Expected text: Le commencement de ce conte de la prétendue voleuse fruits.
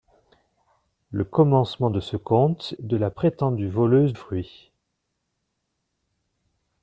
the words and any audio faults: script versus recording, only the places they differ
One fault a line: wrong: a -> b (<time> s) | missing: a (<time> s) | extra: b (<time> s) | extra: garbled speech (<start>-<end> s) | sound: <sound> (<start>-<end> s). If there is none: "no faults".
no faults